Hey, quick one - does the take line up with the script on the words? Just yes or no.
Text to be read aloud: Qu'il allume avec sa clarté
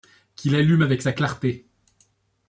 yes